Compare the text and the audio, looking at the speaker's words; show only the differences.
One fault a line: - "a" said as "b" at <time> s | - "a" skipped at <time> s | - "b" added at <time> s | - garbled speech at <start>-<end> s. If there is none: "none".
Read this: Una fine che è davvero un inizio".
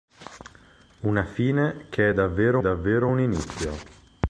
- "davvero" added at 2.6 s